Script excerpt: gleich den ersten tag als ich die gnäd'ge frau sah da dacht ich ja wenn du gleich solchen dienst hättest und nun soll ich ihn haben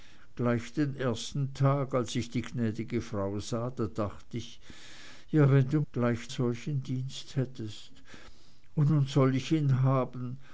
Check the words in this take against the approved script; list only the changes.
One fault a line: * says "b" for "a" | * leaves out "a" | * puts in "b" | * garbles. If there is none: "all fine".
all fine